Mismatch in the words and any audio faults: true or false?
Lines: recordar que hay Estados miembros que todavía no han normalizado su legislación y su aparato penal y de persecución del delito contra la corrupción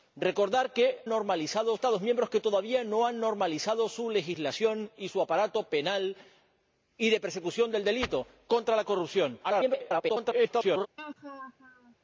true